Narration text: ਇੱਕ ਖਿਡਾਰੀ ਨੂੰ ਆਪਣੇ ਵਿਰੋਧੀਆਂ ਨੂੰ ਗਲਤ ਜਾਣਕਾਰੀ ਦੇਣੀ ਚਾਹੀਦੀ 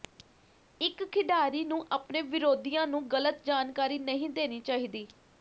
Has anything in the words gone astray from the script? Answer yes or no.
yes